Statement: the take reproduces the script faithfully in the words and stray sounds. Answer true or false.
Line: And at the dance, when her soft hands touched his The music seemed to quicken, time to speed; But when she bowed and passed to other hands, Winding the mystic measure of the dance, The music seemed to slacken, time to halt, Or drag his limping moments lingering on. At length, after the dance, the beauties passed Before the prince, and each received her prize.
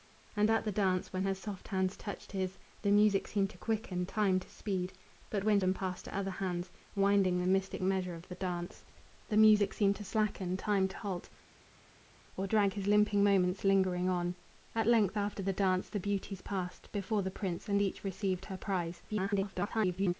false